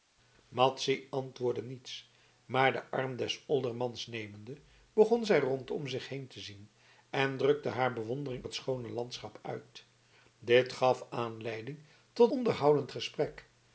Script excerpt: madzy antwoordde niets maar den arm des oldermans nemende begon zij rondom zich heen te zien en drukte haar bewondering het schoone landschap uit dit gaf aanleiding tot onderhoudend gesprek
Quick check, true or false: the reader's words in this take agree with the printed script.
true